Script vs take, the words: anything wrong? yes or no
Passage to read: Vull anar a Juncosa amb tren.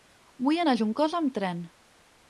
no